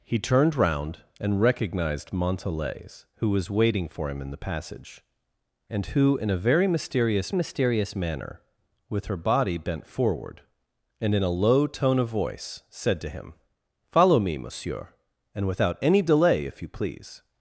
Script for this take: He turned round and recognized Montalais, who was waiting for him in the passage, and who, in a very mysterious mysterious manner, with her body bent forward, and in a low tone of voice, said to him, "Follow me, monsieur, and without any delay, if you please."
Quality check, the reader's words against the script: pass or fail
pass